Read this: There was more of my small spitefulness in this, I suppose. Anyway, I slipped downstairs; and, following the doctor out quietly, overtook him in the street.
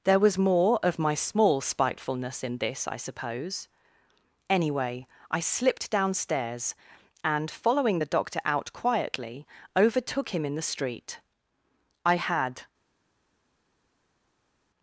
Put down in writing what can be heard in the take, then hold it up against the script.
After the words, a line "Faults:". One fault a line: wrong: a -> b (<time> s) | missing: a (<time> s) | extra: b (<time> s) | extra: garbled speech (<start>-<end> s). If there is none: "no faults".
There was more of my small spitefulness in this, I suppose. Anyway, I slipped downstairs; and, following the doctor out quietly, overtook him in the street. "I had
Faults:
extra: I had (12.0 s)